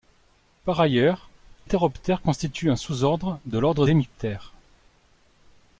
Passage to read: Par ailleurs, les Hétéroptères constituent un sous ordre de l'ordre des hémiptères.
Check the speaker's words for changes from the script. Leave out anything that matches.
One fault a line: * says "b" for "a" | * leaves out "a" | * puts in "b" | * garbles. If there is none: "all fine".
* leaves out "les"
* leaves out "des"